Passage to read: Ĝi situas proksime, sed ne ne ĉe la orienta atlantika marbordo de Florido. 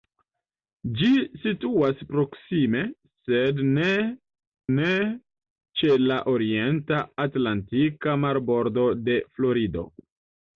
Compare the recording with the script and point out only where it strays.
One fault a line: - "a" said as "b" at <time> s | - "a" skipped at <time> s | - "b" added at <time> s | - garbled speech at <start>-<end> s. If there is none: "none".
none